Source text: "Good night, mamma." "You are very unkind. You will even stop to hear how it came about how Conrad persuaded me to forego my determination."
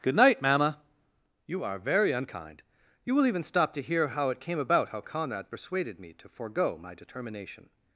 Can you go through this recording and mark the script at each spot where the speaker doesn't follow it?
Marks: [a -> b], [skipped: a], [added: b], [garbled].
"Good night, mamma." "You are very unkind. You will even stop to hear how it came about how Conrad persuaded me to forego my determination."